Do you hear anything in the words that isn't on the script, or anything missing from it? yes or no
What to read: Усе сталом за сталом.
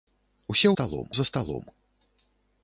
no